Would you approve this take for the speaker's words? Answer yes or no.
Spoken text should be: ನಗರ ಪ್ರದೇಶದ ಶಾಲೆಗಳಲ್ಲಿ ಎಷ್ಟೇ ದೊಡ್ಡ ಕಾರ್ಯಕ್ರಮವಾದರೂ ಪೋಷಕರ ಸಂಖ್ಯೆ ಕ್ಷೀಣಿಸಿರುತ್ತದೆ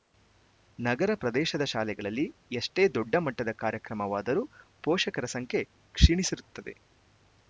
no